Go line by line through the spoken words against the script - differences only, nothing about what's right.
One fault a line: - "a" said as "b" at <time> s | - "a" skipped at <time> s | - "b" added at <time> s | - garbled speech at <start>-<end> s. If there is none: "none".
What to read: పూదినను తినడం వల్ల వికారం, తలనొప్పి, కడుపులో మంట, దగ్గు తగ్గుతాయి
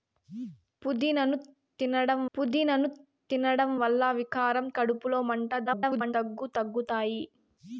- "పూదినను తినడం" added at 2.3 s
- "తలనొప్పి" skipped at 4.7 s
- garbled speech at 5.7-6.1 s